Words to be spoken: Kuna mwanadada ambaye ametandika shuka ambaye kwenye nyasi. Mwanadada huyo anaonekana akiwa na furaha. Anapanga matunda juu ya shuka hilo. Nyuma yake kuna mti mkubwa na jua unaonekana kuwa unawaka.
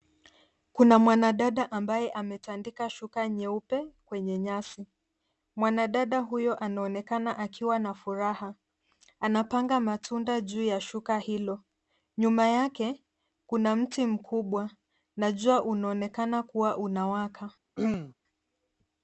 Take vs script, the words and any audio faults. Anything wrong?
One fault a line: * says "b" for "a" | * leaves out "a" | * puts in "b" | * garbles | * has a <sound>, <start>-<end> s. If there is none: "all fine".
* says "nyeupe" for "ambaye"
* has a throat clearing, 17.8-18.1 s